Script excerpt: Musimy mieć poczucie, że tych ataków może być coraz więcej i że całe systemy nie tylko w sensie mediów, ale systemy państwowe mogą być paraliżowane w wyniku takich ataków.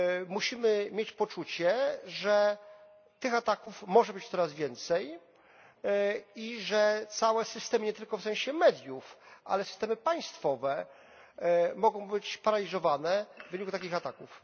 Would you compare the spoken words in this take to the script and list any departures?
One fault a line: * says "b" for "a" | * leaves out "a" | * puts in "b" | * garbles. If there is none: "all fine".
all fine